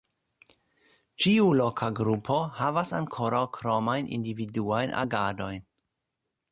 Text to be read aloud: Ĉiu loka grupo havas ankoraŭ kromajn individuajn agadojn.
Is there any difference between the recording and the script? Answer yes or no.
no